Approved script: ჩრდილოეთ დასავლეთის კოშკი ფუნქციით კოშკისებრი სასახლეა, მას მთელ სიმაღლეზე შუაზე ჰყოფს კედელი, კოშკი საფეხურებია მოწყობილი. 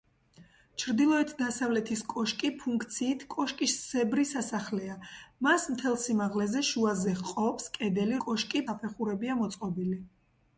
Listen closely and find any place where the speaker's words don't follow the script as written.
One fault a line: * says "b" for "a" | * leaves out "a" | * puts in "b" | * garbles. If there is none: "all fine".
all fine